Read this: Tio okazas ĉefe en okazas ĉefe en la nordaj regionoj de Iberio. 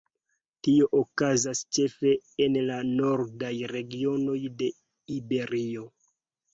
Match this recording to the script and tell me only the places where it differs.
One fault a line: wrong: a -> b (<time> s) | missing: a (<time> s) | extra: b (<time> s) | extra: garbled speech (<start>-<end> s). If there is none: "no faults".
missing: okazas ĉefe en (2.6 s)